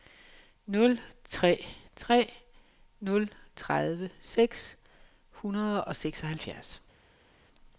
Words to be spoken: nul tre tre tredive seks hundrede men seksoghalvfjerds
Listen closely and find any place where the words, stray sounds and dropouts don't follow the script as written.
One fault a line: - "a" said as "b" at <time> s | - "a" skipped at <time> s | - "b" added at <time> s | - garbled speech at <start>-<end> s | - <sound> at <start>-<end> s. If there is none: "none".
- "nul" added at 3.0 s
- "men" said as "og" at 5.8 s